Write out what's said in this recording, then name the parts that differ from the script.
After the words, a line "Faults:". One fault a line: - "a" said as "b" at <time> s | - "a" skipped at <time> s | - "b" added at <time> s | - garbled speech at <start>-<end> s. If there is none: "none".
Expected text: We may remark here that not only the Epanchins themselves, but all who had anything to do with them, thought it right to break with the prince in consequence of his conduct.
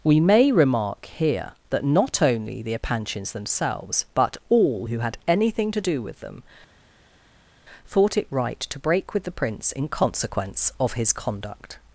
We may remark here that not only the Epanchins themselves, but all who had anything to do with them, thought it right to break with the prince in consequence of his conduct.
Faults:
none